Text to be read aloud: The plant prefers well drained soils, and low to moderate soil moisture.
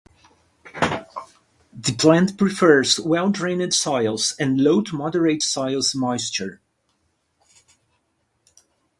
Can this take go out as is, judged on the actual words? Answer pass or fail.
pass